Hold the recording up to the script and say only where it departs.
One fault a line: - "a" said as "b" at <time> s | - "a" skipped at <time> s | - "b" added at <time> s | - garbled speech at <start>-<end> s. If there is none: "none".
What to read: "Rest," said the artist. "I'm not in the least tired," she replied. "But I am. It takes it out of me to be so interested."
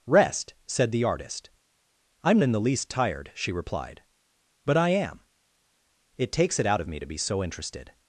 - "not" skipped at 2.4 s